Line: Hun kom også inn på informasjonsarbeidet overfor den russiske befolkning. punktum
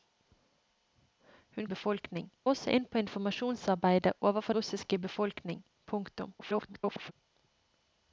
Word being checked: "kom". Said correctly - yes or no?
no